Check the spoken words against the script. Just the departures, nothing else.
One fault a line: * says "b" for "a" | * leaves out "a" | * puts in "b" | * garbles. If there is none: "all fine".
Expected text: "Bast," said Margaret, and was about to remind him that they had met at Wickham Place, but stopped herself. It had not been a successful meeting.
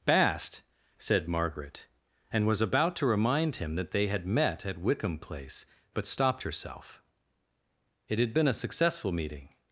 * leaves out "not"